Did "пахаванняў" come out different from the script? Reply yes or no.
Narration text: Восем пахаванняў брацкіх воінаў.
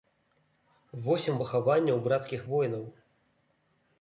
no